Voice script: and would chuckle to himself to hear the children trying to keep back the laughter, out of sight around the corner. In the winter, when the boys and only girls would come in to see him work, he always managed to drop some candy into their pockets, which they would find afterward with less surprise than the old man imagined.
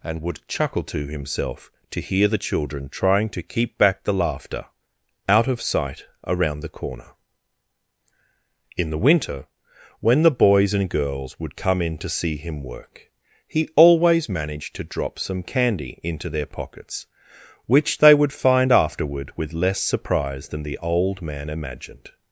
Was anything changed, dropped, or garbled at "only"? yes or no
yes